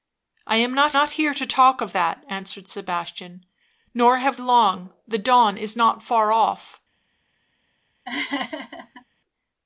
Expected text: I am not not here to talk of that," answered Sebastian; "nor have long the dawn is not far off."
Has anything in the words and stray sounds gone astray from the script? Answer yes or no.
yes